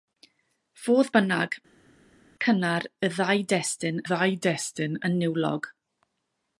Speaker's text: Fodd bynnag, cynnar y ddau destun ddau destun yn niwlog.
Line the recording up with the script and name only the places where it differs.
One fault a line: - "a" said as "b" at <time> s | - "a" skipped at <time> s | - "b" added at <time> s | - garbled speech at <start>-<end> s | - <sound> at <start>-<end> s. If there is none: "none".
none